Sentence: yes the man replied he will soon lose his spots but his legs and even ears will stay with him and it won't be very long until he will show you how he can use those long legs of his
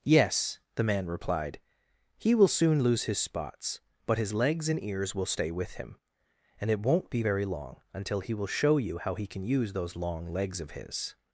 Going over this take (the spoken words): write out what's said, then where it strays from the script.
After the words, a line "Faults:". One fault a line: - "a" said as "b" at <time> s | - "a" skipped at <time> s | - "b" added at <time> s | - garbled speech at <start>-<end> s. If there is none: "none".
yes the man replied he will soon lose his spots but his legs and ears will stay with him and it won't be very long until he will show you how he can use those long legs of his
Faults:
- "even" skipped at 4.8 s